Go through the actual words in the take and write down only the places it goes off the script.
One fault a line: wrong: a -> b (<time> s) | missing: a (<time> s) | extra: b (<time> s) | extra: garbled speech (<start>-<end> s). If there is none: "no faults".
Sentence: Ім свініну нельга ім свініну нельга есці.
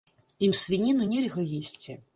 missing: ім свініну нельга (1.4 s)